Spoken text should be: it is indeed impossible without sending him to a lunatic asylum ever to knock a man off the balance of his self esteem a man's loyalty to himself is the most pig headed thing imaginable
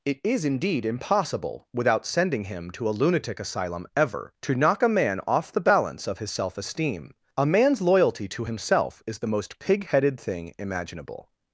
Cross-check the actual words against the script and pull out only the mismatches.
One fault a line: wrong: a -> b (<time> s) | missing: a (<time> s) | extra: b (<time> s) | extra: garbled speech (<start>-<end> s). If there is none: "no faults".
no faults